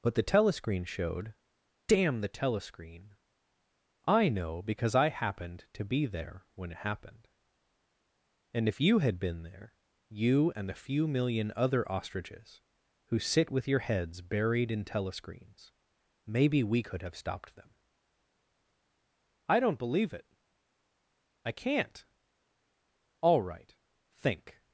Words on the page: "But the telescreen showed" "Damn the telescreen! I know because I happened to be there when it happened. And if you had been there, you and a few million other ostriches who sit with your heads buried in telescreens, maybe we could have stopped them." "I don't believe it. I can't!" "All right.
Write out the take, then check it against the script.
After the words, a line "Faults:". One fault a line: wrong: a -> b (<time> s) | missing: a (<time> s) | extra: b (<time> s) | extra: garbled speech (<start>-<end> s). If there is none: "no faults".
"But the telescreen showed" "Damn the telescreen! I know because I happened to be there when it happened. And if you had been there, you and a few million other ostriches who sit with your heads buried in telescreens, maybe we could have stopped them." "I don't believe it. I can't!" "All right. Think
Faults:
extra: Think (24.1 s)